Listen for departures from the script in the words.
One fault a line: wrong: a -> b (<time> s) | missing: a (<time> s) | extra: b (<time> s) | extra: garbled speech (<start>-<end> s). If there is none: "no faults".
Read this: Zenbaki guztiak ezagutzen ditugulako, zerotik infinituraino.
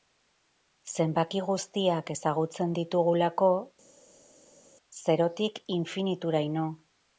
no faults